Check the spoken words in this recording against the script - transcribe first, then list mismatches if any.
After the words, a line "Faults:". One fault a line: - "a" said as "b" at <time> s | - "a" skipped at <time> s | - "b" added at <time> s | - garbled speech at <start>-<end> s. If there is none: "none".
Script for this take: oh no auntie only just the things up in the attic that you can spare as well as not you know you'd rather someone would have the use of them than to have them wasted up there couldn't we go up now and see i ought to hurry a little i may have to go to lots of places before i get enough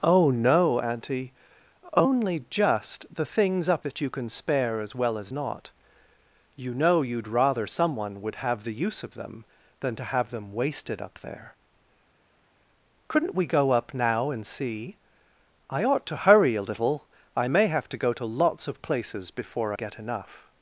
oh no auntie only just the things up that you can spare as well as not you know you'd rather someone would have the use of them than to have them wasted up there couldn't we go up now and see i ought to hurry a little i may have to go to lots of places before get enough
Faults:
- "in the attic" skipped at 3.9 s
- "i" skipped at 19.7 s